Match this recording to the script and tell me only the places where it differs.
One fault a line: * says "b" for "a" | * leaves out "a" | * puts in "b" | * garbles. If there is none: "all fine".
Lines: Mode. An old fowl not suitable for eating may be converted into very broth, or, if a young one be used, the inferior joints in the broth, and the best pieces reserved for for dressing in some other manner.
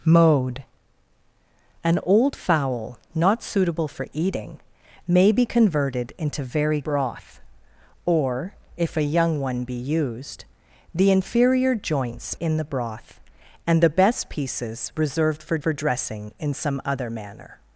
all fine